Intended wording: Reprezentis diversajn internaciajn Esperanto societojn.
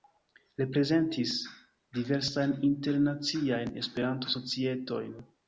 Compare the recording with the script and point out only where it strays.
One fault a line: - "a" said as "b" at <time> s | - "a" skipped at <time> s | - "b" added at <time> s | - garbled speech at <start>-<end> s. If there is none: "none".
none